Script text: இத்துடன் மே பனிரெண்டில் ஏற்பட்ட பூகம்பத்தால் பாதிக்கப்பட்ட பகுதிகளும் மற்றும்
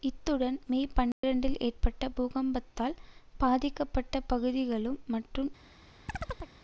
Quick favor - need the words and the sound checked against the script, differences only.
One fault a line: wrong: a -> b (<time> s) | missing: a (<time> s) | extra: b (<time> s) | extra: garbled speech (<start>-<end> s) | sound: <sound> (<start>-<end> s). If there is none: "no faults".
sound: dropout (1.1-1.2 s)
sound: chirp (6.1-6.5 s)